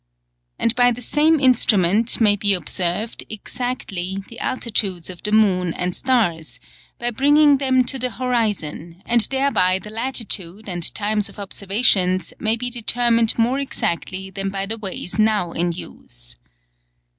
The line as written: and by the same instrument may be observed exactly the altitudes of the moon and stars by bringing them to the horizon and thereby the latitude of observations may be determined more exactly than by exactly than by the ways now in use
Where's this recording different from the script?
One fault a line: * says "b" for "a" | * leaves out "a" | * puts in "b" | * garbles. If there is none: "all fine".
* puts in "and times"
* leaves out "exactly than by"